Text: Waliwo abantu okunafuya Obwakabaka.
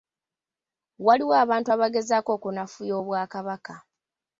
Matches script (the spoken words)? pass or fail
fail